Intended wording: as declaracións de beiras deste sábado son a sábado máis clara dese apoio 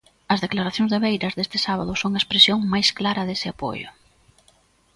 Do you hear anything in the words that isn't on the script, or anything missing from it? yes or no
yes